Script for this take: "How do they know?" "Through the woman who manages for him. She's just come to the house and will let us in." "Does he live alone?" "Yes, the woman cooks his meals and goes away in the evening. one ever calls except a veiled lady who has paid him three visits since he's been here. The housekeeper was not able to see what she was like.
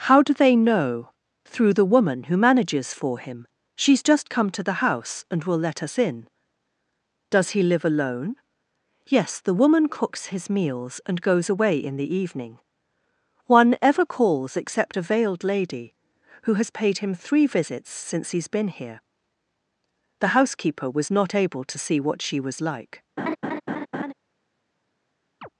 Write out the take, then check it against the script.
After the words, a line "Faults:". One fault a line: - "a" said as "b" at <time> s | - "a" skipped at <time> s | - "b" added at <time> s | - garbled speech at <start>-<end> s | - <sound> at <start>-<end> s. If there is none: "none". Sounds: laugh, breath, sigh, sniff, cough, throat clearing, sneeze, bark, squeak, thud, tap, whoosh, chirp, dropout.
"How do they know?" "Through the woman who manages for him. She's just come to the house and will let us in." "Does he live alone?" "Yes, the woman cooks his meals and goes away in the evening. one ever calls except a veiled lady who has paid him three visits since he's been here. The housekeeper was not able to see what she was like.
Faults:
- laugh at 23.2-24.1 s
- chirp at 25.4-25.5 s